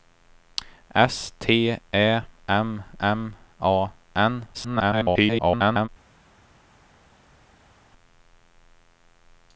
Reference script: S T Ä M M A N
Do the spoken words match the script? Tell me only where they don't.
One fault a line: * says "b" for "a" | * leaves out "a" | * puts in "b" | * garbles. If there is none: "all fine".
* garbles